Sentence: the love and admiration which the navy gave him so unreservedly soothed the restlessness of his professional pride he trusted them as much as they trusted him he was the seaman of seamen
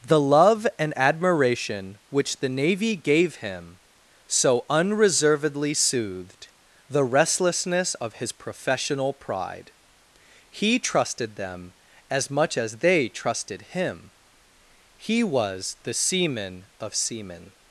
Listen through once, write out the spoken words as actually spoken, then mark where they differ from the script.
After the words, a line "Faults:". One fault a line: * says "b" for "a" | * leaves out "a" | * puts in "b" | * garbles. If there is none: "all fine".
the love and admiration which the navy gave him so unreservedly soothed the restlessness of his professional pride he trusted them as much as they trusted him he was the seaman of seamen
Faults:
all fine